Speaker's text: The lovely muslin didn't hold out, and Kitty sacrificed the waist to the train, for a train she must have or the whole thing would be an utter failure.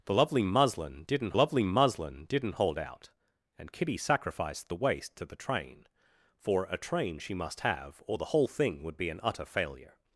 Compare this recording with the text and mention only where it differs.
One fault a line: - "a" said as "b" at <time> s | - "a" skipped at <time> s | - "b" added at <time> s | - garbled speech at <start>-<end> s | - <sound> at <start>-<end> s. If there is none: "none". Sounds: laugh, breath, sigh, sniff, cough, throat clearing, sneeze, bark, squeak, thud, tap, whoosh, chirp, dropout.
- "lovely muslin didn't" added at 1.3 s